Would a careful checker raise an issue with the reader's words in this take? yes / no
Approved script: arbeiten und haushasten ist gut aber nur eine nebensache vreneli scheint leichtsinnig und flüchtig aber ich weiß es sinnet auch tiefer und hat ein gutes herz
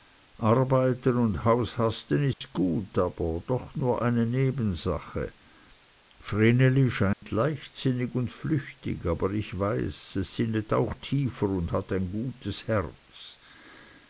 yes